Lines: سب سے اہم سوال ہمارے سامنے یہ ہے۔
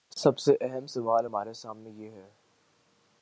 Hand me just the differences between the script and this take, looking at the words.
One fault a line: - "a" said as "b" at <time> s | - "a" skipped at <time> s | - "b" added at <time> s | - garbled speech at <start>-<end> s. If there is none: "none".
none